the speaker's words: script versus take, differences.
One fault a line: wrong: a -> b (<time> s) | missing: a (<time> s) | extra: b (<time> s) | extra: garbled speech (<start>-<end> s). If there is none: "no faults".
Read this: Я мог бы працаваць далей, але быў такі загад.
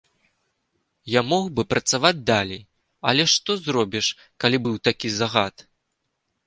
extra: што зробіш калі (3.4 s)